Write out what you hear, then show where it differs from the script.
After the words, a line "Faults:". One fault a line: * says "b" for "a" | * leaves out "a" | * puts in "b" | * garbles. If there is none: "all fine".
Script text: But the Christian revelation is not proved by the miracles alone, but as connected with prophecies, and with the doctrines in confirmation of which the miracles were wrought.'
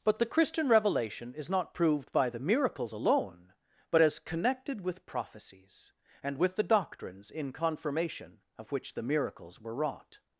But the Christian revelation is not proved by the miracles alone, but as connected with prophecies, and with the doctrines in confirmation of which the miracles were wrought.'
Faults:
all fine